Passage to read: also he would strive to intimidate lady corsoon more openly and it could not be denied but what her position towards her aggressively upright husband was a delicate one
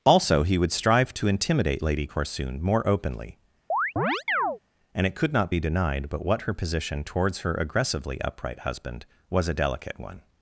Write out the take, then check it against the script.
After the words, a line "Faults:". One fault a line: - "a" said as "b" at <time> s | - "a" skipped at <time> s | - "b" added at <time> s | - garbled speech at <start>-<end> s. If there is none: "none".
also he would strive to intimidate lady corsoon more openly and it could not be denied but what her position towards her aggressively upright husband was a delicate one
Faults:
none